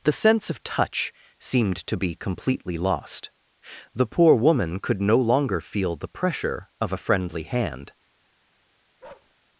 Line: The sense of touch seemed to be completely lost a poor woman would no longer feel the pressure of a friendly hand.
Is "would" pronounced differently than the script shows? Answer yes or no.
yes